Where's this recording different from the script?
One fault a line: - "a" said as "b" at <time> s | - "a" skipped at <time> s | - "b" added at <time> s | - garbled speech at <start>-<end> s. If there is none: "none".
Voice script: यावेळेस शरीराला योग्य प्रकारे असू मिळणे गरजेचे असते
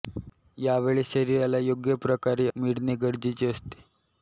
- "असू" skipped at 2.5 s